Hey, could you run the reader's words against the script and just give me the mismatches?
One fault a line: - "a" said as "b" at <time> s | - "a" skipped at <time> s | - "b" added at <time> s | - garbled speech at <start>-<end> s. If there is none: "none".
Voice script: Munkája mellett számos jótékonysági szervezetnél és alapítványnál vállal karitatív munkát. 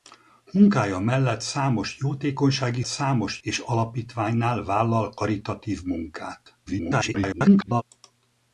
- "szervezetnél" said as "számos" at 2.9 s
- garbled speech at 6.7-7.8 s